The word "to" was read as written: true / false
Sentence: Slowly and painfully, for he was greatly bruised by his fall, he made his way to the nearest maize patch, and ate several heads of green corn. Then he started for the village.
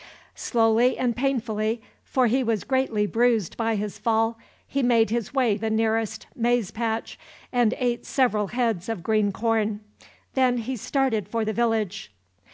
false